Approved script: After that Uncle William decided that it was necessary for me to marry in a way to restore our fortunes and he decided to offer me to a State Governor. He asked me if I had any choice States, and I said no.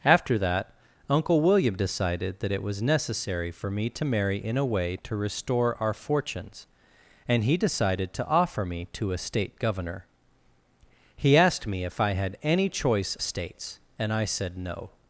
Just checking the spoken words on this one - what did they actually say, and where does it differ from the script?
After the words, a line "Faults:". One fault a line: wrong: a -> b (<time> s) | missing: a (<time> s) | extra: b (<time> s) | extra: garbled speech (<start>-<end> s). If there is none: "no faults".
After that Uncle William decided that it was necessary for me to marry in a way to restore our fortunes and he decided to offer me to a State Governor. He asked me if I had any choice States, and I said no.
Faults:
no faults